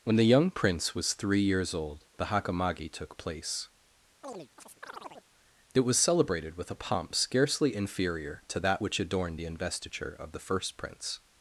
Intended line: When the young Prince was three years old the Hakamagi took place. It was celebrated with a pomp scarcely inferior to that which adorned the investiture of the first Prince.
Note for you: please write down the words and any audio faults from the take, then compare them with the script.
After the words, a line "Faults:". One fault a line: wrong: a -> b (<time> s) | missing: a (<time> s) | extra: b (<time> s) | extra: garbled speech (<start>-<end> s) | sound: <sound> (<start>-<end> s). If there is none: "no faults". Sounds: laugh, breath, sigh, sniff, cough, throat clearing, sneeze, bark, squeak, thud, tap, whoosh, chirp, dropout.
When the young Prince was three years old the Hakamagi took place. It was celebrated with a pomp scarcely inferior to that which adorned the investiture of the first Prince.
Faults:
sound: chirp (4.2-5.3 s)